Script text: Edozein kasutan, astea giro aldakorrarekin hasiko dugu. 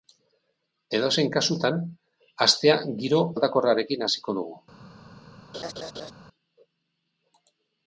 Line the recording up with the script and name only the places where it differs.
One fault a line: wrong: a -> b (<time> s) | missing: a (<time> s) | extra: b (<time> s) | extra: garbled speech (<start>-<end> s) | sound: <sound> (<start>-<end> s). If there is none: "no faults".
sound: laugh (5.5-6.1 s)